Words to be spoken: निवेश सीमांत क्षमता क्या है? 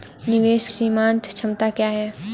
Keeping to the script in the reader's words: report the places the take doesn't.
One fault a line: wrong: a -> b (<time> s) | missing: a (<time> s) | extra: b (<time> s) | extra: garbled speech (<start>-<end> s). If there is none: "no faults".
no faults